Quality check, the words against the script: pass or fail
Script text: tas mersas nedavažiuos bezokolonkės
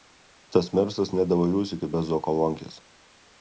fail